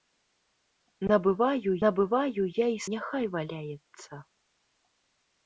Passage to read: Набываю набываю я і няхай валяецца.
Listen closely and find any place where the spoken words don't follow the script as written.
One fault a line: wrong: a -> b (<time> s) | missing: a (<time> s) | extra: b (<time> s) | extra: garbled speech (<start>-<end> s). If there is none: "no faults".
no faults